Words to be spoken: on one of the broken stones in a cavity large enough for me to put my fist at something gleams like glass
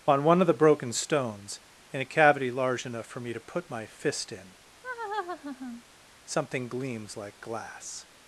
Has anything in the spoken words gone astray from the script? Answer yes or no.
yes